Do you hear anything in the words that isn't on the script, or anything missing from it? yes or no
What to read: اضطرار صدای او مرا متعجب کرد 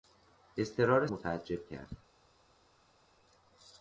yes